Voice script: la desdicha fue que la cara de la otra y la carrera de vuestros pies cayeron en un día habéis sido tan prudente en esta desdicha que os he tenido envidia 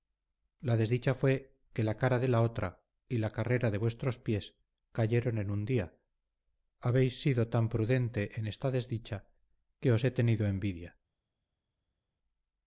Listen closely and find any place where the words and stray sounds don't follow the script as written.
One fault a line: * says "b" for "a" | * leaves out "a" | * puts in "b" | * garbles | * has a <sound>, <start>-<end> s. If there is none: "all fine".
all fine